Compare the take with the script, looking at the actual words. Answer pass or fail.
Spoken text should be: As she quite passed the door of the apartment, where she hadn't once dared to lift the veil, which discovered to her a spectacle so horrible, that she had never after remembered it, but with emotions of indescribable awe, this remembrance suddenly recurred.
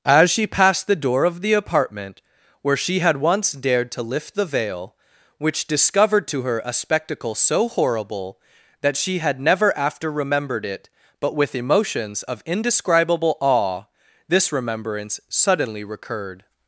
fail